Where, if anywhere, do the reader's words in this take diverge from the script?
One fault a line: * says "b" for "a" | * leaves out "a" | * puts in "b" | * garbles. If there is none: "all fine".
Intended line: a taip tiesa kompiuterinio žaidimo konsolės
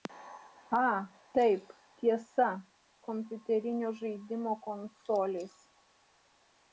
all fine